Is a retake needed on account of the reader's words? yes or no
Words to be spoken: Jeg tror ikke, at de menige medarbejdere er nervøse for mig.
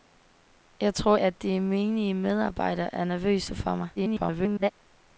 yes